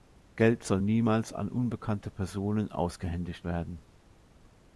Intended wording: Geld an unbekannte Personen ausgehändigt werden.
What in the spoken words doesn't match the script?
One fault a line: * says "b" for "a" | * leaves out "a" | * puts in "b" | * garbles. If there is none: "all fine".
* puts in "soll niemals"